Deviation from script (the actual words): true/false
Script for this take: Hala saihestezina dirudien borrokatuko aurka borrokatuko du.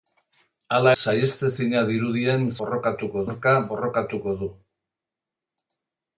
false